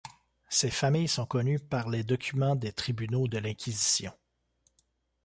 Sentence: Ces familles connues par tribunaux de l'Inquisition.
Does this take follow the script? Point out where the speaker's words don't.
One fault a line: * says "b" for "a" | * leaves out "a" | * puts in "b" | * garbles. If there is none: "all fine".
* puts in "sont"
* puts in "les documents des"